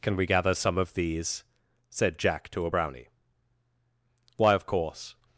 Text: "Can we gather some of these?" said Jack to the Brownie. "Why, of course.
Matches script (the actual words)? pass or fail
fail